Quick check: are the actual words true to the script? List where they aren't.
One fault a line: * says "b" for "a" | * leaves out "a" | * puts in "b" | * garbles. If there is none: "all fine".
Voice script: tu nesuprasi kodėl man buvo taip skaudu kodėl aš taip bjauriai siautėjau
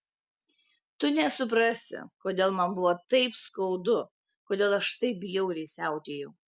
all fine